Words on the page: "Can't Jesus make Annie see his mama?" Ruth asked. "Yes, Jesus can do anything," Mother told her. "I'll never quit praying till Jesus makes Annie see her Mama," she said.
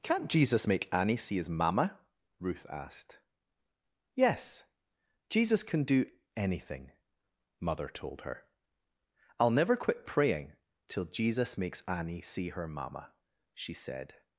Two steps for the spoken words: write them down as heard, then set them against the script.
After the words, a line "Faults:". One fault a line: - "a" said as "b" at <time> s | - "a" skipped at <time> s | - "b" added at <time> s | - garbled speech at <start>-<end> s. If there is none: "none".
"Can't Jesus make Annie see his mama?" Ruth asked. "Yes, Jesus can do anything," Mother told her. "I'll never quit praying till Jesus makes Annie see her Mama," she said.
Faults:
none